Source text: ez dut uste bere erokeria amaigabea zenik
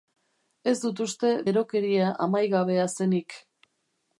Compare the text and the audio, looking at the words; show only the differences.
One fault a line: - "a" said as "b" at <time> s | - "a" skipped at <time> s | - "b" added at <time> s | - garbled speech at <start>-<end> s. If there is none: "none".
- "bere" skipped at 1.3 s